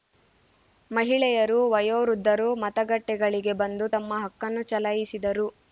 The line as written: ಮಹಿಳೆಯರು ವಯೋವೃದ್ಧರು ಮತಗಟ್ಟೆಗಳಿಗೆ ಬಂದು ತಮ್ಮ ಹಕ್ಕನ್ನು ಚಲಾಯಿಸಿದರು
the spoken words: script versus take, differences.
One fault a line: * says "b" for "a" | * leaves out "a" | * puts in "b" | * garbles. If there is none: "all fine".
all fine